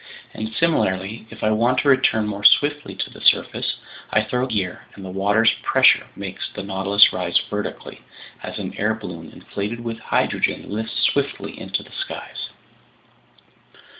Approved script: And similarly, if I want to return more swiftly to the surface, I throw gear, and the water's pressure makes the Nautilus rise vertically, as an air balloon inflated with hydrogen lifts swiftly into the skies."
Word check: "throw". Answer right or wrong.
right